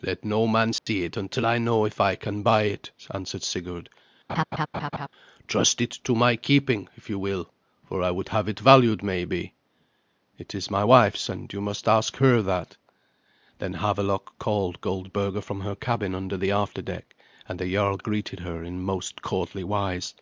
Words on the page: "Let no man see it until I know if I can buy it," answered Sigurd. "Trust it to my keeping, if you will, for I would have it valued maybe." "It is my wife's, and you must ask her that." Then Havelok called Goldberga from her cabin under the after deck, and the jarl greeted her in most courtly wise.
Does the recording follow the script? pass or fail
pass